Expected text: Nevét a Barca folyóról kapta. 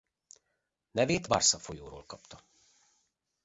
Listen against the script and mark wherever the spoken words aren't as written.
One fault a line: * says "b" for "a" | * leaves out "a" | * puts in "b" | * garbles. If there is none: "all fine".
* leaves out "a"